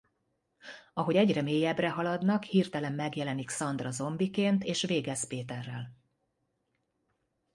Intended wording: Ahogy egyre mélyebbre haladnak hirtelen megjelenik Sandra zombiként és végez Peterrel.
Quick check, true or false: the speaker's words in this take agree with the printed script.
true